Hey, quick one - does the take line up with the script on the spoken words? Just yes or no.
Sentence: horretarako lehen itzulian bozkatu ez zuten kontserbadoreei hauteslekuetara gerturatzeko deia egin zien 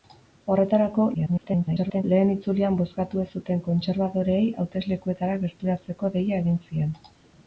no